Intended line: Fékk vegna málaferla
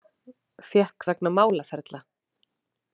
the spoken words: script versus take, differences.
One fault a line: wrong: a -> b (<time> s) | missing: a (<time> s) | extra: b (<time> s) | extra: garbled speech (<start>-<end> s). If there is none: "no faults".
no faults